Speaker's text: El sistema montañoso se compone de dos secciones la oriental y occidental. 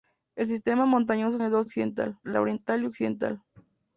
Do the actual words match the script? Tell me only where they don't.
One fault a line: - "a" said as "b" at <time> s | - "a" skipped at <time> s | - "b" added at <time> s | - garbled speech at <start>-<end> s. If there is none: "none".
- "se compone" skipped at 1.4 s
- "secciones" said as "occidental" at 1.6 s